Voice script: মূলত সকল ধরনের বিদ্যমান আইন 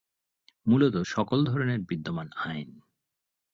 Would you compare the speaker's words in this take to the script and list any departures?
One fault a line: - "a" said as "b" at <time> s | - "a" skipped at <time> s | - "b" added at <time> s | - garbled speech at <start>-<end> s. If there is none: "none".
none